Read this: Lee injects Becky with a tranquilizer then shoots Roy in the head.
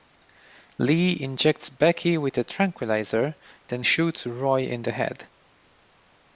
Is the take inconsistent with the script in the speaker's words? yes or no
no